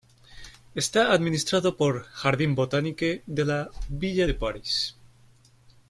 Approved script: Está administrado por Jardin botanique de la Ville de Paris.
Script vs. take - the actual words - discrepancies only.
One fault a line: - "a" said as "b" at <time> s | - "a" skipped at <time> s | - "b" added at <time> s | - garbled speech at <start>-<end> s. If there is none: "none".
none